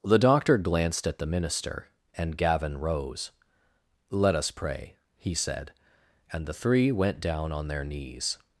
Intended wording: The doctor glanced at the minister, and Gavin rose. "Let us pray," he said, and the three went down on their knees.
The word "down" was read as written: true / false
true